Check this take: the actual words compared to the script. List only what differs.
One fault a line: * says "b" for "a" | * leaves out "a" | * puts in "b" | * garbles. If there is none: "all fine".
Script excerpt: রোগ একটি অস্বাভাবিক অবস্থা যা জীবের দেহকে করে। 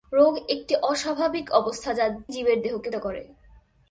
all fine